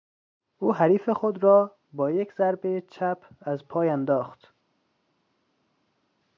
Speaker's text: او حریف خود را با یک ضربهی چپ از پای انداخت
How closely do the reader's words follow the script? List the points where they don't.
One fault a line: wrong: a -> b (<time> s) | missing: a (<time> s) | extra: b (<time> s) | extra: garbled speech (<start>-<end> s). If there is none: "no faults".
no faults